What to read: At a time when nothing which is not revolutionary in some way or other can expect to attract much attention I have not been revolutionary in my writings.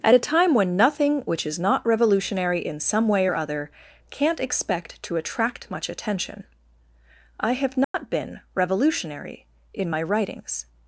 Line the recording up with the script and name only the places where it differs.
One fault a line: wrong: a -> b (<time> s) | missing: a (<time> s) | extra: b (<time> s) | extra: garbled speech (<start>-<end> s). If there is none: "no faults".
wrong: can -> can't (4.1 s)